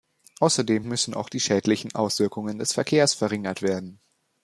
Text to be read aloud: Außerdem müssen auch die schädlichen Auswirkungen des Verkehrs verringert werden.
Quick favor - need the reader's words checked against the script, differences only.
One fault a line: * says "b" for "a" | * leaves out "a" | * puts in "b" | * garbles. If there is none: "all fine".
all fine